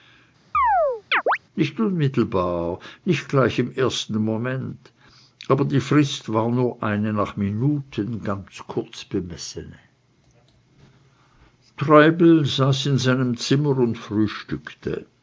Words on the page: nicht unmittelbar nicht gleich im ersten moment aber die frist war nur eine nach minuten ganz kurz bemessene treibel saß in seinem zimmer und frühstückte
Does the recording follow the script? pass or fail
pass